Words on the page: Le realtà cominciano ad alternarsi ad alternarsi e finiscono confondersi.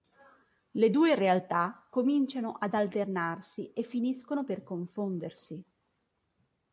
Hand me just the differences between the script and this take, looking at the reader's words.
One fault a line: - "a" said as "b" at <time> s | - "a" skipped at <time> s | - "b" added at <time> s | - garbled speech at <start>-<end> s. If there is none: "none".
- "due" added at 0.9 s
- "ad alternarsi" skipped at 3.7 s
- "per" added at 4.4 s